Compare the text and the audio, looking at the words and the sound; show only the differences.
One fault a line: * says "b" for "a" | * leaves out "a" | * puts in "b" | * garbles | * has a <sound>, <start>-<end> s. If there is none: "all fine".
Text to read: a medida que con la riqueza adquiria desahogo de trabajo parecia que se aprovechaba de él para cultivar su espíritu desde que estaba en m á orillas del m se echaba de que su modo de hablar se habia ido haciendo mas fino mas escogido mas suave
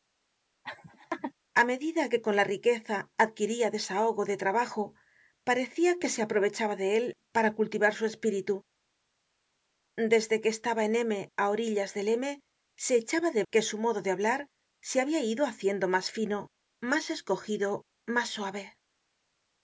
* has a laugh, 0.6-1.3 s